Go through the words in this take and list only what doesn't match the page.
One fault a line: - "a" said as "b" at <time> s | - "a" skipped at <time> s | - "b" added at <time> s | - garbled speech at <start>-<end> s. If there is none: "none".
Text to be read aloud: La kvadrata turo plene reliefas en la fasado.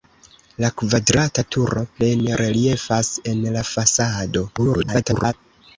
- garbled speech at 4.6-5.3 s